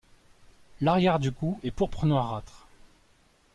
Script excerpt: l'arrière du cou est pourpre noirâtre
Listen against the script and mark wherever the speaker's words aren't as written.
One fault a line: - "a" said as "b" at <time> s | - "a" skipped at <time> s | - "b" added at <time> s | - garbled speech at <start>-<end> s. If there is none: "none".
none